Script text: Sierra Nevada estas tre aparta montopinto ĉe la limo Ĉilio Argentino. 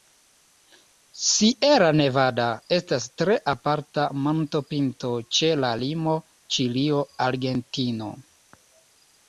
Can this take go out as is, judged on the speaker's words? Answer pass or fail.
pass